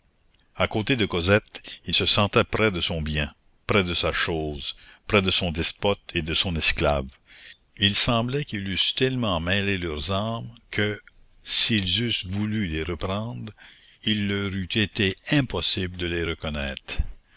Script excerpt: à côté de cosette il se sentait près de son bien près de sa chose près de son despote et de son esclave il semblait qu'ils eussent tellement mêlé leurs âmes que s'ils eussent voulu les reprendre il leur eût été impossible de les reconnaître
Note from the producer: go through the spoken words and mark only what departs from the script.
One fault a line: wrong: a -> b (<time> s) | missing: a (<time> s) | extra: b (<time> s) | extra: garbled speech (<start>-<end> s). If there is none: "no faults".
no faults